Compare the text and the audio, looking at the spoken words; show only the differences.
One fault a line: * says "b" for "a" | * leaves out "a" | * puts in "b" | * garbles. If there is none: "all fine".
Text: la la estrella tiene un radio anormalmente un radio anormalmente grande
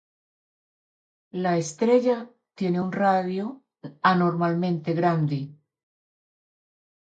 * leaves out "la"
* leaves out "un radio anormalmente"